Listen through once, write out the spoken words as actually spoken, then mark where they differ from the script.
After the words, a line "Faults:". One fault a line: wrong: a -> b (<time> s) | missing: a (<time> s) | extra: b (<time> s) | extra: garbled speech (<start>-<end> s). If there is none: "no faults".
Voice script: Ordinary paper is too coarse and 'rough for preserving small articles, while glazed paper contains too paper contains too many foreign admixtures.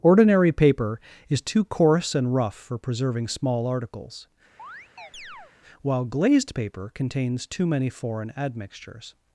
Ordinary paper is too coarse and 'rough for preserving small articles, while glazed paper contains too many foreign admixtures.
Faults:
missing: paper contains too (7.7 s)